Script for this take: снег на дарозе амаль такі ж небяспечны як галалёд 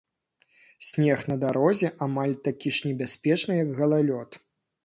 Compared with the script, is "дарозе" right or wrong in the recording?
right